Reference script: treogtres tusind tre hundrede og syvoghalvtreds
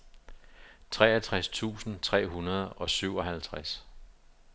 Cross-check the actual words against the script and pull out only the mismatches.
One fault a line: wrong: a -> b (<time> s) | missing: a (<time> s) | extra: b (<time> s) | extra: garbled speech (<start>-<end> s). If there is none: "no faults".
no faults